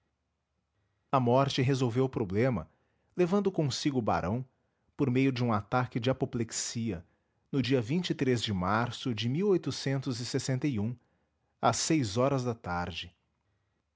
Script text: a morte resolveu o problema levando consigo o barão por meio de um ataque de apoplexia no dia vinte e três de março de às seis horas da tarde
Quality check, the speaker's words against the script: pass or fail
pass